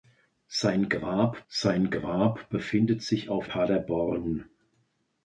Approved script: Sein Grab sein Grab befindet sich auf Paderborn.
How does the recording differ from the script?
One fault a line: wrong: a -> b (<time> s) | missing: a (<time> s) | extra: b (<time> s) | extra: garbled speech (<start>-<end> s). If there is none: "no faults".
no faults